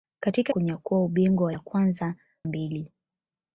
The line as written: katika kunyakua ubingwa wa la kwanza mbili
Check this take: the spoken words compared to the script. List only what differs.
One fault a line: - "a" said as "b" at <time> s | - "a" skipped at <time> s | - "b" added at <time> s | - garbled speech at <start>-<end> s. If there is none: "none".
none